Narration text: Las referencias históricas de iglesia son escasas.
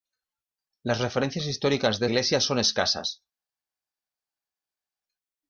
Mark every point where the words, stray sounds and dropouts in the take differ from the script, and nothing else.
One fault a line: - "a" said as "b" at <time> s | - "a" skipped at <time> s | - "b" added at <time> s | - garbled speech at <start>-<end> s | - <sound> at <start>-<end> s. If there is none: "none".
none